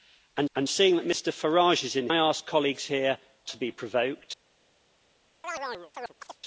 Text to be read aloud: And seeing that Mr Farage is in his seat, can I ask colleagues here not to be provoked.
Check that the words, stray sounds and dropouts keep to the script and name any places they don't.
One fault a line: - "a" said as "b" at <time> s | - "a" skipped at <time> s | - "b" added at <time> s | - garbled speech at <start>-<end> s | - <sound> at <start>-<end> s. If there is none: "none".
- "and" added at 0.5 s
- "his seat can" skipped at 2.1 s
- "not" skipped at 3.2 s
- chirp at 5.4-6.4 s